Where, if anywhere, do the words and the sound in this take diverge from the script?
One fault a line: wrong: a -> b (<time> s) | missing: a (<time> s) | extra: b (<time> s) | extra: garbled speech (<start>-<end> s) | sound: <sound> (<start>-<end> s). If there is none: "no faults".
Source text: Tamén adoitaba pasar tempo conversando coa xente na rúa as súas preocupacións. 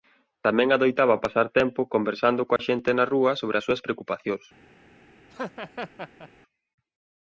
sound: dropout (2.6-2.6 s)
extra: sobre (3.4 s)
sound: laugh (5.3-6.3 s)